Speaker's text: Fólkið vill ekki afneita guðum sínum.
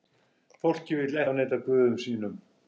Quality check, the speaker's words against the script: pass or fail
fail